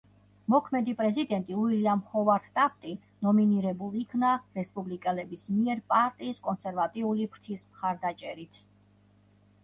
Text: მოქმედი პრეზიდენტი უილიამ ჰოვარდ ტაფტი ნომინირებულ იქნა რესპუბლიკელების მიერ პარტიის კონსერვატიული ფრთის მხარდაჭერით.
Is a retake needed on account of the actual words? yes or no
no